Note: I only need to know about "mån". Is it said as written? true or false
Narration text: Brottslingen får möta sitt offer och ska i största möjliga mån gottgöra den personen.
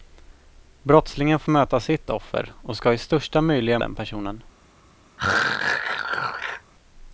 false